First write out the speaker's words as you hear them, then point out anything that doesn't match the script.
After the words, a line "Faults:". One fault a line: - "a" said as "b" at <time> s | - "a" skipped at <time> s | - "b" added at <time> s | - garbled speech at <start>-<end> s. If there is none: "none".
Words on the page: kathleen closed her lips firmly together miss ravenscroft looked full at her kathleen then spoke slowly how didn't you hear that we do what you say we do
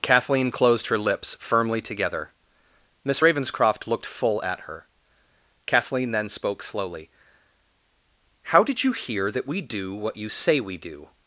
kathleen closed her lips firmly together miss ravenscroft looked full at her kathleen then spoke slowly how did you hear that we do what you say we do
Faults:
- "didn't" said as "did" at 8.6 s